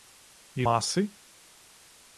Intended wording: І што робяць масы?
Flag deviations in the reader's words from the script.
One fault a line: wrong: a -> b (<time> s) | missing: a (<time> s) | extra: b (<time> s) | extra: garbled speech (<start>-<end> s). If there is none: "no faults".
missing: што робяць (0.7 s)